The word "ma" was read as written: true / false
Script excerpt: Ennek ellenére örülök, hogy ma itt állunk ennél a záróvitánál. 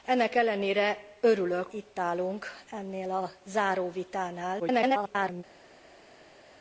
false